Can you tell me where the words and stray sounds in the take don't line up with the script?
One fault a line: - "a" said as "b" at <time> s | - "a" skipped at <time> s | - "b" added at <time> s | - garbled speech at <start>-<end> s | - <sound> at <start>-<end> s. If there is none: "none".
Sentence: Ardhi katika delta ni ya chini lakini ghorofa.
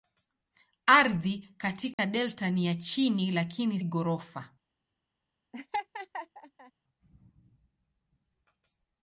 - dropout at 1.9-2.0 s
- laugh at 5.5-6.7 s